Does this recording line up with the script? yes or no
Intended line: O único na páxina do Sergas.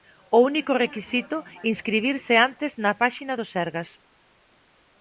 no